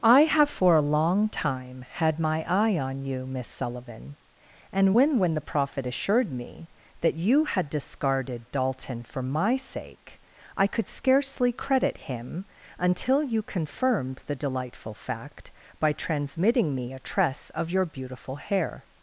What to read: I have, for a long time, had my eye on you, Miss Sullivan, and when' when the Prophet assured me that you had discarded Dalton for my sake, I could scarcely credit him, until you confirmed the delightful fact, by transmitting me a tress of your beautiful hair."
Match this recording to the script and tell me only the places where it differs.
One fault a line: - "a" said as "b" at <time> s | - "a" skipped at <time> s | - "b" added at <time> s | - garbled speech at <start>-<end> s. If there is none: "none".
none